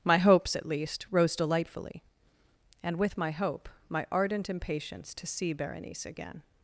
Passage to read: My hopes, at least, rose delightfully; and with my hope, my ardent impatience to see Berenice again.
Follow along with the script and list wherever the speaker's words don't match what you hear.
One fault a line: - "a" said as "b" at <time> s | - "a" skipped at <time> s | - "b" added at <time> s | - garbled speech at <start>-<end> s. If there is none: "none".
none